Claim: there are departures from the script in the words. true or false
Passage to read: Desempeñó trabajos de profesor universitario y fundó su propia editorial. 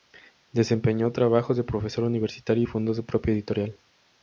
false